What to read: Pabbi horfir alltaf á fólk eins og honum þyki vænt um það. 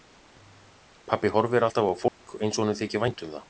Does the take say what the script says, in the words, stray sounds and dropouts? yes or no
no